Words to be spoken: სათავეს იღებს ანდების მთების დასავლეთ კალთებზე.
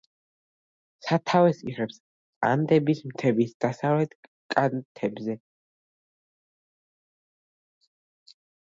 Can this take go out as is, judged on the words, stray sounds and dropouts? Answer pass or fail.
pass